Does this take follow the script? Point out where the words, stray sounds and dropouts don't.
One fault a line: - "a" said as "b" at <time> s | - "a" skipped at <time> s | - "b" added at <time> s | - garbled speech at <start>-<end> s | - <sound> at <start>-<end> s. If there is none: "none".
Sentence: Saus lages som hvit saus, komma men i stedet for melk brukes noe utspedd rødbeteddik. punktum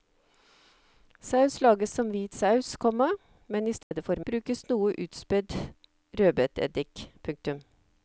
- dropout at 3.8-3.9 s
- "melk" skipped at 4.2 s